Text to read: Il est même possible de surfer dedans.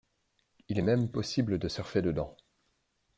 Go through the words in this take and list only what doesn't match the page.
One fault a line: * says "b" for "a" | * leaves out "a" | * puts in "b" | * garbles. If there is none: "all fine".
all fine